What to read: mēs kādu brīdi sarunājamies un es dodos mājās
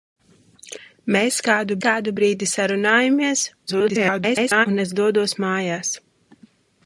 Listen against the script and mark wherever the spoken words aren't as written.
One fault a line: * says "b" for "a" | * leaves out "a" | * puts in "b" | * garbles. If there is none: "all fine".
* puts in "kādu"
* garbles